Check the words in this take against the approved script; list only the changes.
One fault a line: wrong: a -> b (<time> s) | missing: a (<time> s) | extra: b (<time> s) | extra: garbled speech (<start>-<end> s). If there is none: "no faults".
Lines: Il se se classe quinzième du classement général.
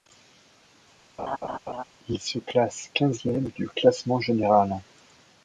missing: se (2.4 s)